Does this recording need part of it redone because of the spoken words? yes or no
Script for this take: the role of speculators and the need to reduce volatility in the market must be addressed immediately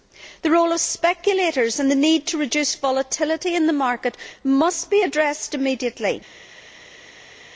no